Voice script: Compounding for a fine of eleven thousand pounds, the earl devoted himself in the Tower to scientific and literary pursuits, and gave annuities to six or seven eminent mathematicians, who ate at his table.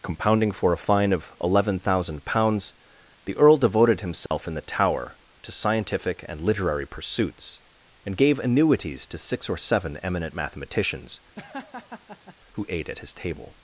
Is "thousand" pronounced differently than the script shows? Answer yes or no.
no